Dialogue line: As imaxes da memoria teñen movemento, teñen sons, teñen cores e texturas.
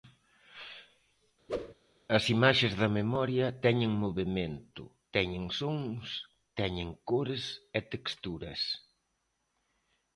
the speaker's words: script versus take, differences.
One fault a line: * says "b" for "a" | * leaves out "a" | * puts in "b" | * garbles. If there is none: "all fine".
all fine